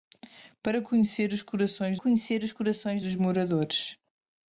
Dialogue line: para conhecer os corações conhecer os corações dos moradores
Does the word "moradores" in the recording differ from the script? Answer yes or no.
no